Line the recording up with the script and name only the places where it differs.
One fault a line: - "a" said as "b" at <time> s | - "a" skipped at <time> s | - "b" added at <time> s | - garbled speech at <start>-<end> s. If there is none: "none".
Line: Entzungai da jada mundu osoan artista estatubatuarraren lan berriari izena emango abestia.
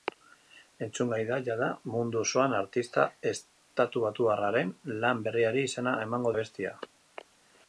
none